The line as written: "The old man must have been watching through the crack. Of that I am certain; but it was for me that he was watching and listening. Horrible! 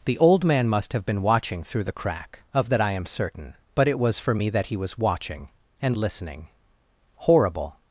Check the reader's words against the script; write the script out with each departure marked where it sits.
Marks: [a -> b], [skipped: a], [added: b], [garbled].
"The old man must have been watching through the crack. Of that I am certain; but it was for me that he was watching and listening. Horrible!